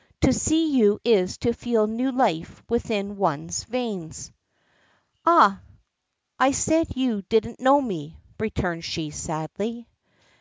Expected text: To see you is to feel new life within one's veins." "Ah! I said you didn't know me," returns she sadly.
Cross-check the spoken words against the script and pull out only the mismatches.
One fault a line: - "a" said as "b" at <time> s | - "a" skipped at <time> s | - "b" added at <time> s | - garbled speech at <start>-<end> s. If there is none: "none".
none